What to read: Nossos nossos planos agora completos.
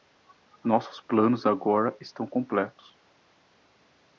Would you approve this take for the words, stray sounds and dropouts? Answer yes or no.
no